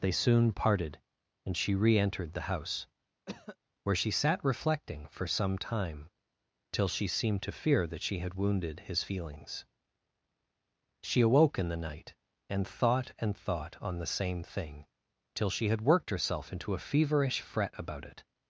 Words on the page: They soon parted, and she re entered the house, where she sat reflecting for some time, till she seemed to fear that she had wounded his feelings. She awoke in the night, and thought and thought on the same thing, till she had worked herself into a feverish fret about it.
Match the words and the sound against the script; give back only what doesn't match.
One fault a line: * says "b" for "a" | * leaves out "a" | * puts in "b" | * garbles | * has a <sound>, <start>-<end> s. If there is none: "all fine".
* has a cough, 3.3-3.6 s